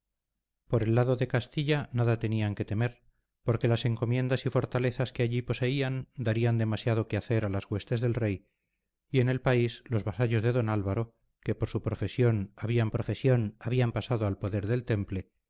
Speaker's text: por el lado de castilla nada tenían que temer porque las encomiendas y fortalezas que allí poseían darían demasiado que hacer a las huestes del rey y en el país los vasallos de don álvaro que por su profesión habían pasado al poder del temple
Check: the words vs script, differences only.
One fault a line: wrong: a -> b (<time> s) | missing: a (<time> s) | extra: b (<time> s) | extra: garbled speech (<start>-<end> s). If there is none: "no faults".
extra: profesión habían (12.9 s)